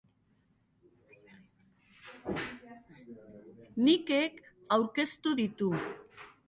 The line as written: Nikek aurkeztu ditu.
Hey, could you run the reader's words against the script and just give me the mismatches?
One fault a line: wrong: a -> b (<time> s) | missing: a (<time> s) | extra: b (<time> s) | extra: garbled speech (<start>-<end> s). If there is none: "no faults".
no faults